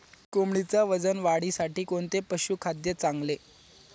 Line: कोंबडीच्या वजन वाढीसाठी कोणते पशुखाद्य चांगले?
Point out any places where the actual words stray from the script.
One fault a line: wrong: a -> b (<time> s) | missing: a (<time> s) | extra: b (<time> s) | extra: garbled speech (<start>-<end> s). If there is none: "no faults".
no faults